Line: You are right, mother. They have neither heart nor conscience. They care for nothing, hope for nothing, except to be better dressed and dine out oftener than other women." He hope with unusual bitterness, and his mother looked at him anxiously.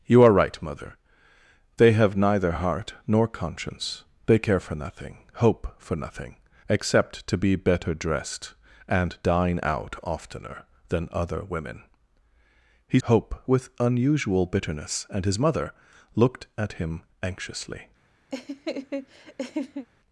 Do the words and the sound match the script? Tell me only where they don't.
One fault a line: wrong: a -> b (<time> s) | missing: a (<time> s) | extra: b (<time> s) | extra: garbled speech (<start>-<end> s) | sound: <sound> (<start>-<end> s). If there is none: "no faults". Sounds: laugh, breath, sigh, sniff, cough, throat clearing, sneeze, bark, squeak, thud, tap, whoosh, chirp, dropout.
sound: laugh (18.3-19.9 s)